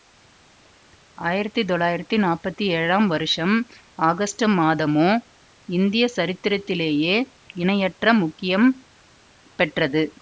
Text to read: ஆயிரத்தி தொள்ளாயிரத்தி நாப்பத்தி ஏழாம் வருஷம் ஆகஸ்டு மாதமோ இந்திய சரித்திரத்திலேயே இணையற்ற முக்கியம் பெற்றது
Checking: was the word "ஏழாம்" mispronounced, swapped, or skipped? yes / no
no